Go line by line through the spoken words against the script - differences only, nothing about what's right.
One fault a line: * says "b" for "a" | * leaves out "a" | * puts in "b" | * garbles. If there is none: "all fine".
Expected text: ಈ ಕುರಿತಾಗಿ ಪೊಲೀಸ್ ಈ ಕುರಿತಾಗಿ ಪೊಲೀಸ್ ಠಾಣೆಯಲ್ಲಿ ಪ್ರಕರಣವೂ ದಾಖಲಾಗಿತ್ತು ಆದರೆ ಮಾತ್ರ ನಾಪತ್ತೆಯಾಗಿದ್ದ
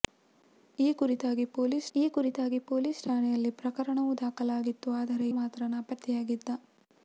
all fine